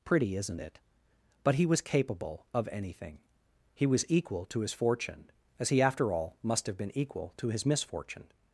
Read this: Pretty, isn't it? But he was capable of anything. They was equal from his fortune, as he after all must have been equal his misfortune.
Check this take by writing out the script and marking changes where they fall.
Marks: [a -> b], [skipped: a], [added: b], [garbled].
Pretty, isn't it? But he was capable of anything. [They -> He] was equal [from -> to] his fortune, as he after all must have been equal [added: to] his misfortune.